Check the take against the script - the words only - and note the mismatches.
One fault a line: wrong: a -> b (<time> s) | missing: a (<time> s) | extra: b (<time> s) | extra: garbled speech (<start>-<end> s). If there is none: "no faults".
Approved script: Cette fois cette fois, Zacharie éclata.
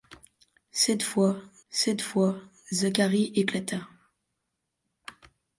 no faults